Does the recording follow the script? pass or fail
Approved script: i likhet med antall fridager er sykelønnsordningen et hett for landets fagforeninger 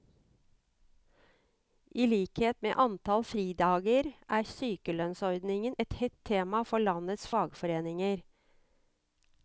fail